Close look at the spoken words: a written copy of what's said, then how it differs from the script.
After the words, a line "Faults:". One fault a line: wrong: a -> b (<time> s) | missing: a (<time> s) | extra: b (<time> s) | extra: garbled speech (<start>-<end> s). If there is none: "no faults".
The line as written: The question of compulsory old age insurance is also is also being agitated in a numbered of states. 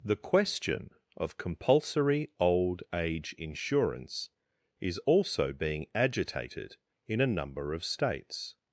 The question of compulsory old age insurance is also being agitated in a number of states.
Faults:
missing: is also (5.5 s)
wrong: numbered -> number (7.3 s)